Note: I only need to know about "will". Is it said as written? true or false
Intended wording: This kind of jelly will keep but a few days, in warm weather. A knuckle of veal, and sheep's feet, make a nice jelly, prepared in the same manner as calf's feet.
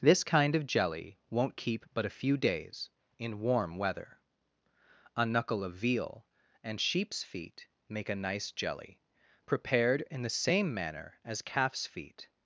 false